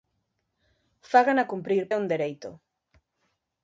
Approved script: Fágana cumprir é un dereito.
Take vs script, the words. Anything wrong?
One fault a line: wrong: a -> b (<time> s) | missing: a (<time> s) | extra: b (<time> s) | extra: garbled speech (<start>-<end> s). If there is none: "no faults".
no faults